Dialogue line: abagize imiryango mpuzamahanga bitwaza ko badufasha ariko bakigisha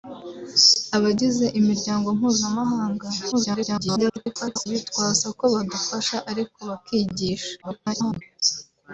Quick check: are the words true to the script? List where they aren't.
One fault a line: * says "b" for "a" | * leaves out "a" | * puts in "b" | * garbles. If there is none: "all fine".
* garbles
* garbles